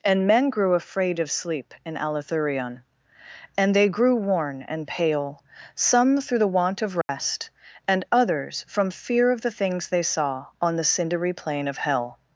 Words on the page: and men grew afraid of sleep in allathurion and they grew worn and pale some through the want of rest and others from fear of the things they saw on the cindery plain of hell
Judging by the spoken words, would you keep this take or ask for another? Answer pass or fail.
pass